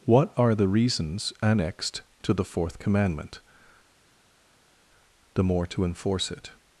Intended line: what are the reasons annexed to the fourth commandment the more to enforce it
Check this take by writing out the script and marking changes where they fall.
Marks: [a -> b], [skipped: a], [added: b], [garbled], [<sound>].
what are the reasons annexed to the fourth commandment the more to enforce it